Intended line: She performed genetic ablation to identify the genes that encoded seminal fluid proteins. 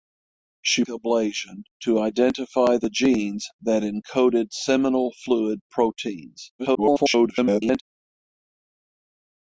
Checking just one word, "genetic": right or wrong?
wrong